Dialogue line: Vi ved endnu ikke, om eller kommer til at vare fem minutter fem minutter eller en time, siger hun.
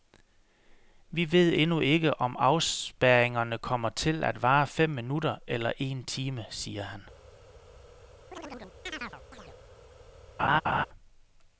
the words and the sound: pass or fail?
fail